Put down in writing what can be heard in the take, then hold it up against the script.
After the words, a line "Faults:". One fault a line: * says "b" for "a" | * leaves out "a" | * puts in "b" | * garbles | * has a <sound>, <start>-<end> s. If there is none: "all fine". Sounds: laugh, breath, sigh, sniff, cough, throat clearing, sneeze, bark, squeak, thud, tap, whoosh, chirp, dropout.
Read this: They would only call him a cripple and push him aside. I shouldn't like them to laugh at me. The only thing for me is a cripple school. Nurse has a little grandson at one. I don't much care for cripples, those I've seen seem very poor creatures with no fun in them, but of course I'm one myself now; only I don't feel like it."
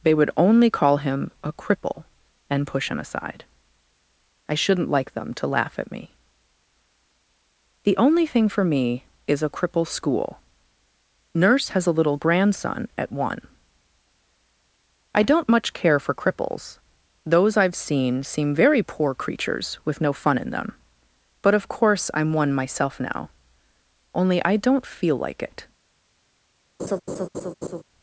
They would only call him a cripple and push him aside. I shouldn't like them to laugh at me. The only thing for me is a cripple school. Nurse has a little grandson at one. I don't much care for cripples, those I've seen seem very poor creatures with no fun in them, but of course I'm one myself now; only I don't feel like it."
Faults:
* has a laugh, 26.8-27.8 s